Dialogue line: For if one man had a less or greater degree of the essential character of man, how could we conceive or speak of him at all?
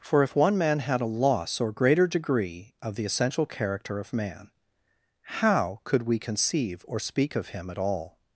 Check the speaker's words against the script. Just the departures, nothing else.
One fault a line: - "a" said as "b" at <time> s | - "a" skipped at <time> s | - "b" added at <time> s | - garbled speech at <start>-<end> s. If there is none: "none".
- "less" said as "loss" at 1.1 s